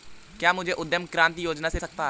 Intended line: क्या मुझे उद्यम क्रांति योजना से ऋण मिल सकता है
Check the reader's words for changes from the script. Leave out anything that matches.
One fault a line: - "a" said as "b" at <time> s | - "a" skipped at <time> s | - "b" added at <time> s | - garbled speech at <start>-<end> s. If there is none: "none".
- "ऋण मिल" skipped at 1.8 s